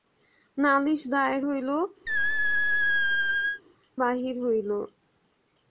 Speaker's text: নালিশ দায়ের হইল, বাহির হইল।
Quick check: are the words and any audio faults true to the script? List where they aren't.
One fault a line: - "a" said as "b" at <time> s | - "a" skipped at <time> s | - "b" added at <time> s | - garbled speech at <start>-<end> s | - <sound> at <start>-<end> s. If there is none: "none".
- squeak at 2.1-3.6 s